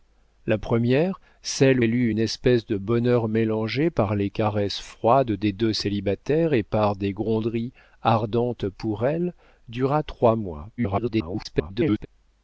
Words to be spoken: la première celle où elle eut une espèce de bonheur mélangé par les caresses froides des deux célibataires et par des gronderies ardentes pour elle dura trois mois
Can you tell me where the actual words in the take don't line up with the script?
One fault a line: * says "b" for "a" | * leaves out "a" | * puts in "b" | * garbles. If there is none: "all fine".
* leaves out "où"
* garbles